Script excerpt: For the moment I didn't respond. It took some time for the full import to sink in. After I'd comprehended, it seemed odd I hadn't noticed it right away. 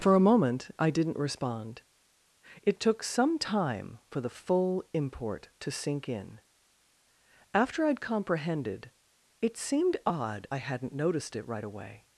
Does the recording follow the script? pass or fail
fail